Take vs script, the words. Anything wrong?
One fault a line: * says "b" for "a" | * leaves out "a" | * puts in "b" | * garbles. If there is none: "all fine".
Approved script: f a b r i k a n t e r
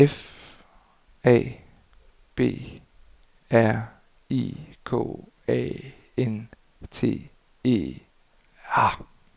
all fine